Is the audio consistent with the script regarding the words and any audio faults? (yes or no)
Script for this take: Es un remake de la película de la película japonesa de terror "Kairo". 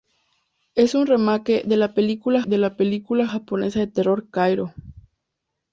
yes